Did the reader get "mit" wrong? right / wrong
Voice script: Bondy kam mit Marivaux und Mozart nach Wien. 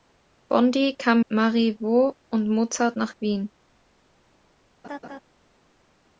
wrong